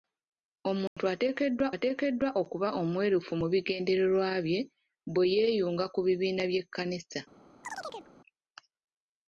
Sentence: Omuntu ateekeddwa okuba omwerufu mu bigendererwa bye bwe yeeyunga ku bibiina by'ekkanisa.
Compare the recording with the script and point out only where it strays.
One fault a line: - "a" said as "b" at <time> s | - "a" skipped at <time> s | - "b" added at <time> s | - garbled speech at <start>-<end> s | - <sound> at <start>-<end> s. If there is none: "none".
- dropout at 0.9-1.0 s
- "ateekeddwa" added at 1.7 s
- chirp at 7.6-8.1 s